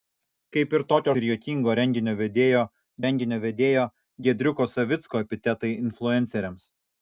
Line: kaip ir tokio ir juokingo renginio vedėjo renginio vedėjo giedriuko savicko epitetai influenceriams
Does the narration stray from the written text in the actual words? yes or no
no